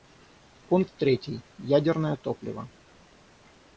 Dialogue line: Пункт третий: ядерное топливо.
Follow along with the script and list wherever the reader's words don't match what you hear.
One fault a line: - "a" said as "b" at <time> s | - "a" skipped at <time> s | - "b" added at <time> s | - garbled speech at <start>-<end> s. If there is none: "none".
none